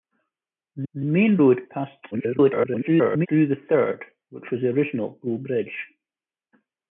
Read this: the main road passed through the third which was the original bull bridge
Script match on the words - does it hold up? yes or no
no